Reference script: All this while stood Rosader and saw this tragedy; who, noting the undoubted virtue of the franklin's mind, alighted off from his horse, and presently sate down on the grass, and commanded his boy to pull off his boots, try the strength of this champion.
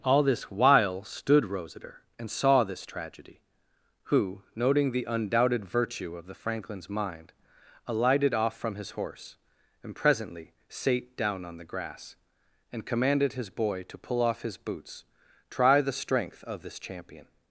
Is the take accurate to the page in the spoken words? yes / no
yes